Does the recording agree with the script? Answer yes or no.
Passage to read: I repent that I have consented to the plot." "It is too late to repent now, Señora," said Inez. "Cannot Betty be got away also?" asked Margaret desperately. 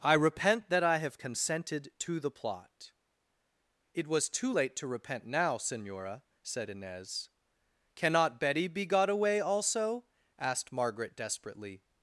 no